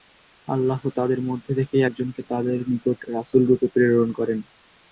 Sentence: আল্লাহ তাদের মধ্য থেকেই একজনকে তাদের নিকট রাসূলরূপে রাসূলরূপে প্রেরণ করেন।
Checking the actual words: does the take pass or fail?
fail